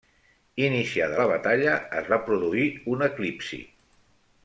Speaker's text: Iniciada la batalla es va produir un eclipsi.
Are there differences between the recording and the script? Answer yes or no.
no